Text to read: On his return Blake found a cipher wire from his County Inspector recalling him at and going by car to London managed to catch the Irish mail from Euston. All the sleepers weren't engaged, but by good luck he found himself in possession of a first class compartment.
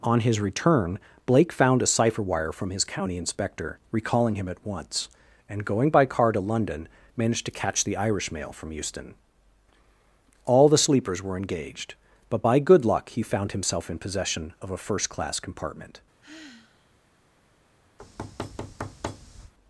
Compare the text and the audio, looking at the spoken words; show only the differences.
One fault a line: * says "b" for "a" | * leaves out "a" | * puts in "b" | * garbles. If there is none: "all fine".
* puts in "once"
* says "were" for "weren't"